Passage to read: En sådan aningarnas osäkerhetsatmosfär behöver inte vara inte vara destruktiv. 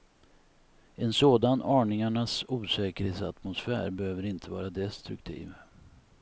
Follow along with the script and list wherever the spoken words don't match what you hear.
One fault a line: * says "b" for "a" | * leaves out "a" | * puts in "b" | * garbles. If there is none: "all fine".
* leaves out "inte vara"